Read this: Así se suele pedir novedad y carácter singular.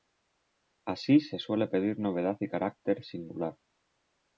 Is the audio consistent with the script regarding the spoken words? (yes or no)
yes